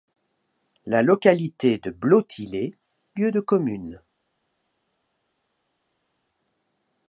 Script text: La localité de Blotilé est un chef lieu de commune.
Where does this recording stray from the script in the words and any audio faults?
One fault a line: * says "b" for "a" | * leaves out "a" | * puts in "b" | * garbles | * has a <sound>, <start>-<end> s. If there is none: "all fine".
* leaves out "est un chef"